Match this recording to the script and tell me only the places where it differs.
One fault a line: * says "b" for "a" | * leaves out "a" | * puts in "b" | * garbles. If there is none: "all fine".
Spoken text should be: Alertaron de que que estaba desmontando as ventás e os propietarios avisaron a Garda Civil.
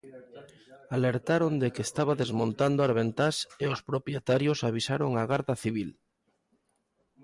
* leaves out "que"